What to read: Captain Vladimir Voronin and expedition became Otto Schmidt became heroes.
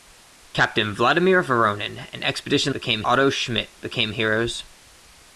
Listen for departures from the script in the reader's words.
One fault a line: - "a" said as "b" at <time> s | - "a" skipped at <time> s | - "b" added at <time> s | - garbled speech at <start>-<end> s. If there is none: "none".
none